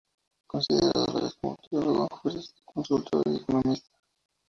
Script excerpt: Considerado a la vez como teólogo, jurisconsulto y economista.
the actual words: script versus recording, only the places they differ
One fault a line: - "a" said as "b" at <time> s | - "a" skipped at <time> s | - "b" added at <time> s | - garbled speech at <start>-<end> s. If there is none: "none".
none